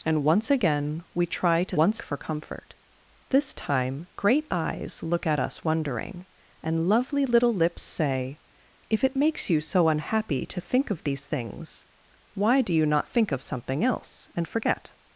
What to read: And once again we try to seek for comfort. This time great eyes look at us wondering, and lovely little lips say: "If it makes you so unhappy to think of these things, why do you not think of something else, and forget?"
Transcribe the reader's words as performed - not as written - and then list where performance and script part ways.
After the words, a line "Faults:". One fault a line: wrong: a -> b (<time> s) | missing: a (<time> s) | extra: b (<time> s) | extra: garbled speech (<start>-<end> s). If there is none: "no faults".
And once again we try to once for comfort. This time great eyes look at us wondering, and lovely little lips say: "If it makes you so unhappy to think of these things, why do you not think of something else, and forget?"
Faults:
wrong: seek -> once (1.7 s)